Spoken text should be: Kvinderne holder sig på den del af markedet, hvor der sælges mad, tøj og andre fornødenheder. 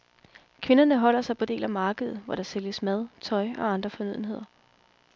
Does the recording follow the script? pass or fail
fail